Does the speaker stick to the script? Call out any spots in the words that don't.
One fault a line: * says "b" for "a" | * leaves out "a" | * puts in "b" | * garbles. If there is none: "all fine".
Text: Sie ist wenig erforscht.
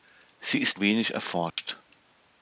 all fine